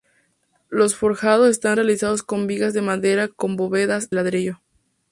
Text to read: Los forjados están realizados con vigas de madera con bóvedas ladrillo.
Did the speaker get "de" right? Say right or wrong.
right